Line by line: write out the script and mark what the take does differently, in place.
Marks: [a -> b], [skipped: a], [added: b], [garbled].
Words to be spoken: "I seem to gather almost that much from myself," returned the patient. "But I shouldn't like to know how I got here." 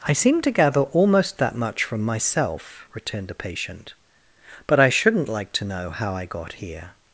"I seem to gather almost that much from myself," returned the patient. "But I shouldn't like to know how I got here."